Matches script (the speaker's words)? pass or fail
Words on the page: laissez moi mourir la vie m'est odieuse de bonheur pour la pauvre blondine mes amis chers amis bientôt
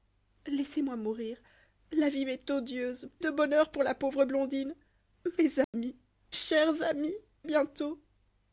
pass